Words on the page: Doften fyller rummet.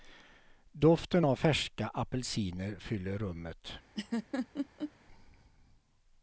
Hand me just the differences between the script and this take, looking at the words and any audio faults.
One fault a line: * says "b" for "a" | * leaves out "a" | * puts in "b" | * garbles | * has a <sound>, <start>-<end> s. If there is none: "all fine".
* puts in "av färska apelsiner"
* has a laugh, 3.9-4.9 s